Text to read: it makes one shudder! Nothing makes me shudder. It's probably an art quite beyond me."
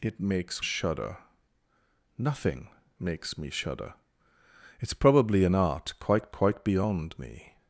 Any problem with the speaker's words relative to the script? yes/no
yes